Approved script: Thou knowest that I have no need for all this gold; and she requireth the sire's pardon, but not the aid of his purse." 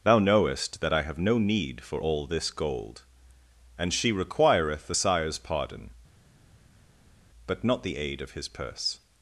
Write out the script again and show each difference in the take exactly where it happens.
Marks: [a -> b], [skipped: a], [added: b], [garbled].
Thou knowest that I have no need for all this gold; and she requireth the sire's pardon, but not the aid of his purse."